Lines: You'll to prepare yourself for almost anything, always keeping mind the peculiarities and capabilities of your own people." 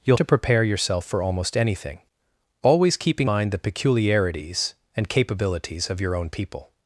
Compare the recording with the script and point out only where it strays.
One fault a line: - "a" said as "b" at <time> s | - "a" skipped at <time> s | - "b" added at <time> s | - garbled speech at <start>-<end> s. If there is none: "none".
none